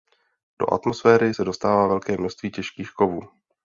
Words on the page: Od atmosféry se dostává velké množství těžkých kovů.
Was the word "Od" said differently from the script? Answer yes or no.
yes